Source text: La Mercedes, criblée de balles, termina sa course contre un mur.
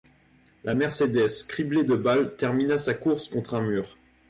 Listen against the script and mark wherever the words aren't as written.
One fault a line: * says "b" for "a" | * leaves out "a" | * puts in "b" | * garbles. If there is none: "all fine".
all fine